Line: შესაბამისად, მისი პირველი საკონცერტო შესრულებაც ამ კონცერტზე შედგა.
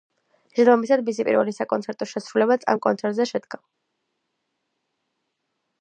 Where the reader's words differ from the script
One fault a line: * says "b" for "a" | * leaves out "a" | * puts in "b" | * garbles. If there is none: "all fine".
all fine